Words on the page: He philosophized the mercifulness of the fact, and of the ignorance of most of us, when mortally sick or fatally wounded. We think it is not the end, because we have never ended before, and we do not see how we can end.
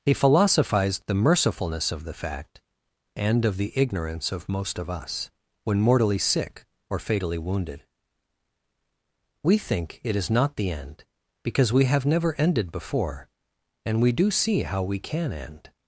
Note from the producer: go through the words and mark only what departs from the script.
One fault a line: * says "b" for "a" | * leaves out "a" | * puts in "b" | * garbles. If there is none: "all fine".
* leaves out "not"